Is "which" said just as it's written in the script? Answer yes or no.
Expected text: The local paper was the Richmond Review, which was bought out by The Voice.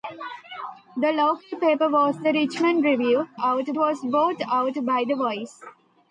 no